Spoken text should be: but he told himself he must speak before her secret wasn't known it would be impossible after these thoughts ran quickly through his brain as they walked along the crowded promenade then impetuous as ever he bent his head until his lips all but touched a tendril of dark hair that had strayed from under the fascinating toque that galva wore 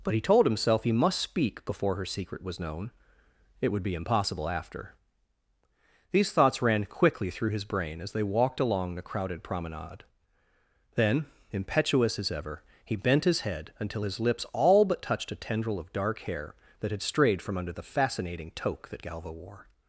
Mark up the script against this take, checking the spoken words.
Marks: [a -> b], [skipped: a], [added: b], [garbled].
but he told himself he must speak before her secret [wasn't -> was] known it would be impossible after these thoughts ran quickly through his brain as they walked along the crowded promenade then impetuous as ever he bent his head until his lips all but touched a tendril of dark hair that had strayed from under the fascinating toque that galva wore